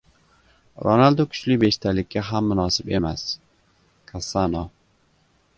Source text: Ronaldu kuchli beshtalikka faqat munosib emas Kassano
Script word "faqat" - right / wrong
wrong